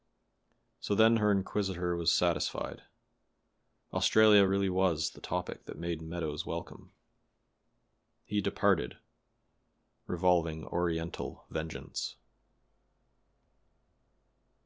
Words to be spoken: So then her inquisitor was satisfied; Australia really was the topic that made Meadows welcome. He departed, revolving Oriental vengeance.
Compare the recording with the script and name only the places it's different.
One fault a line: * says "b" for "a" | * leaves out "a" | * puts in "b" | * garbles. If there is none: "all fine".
all fine